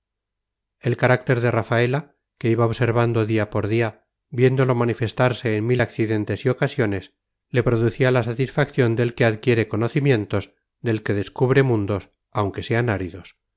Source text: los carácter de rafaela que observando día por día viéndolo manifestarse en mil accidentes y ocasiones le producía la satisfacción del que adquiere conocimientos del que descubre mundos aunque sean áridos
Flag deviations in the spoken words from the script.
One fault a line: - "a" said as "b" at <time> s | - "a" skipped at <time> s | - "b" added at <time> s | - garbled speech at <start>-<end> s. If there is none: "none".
- "los" said as "el" at 0.8 s
- "iba" added at 2.5 s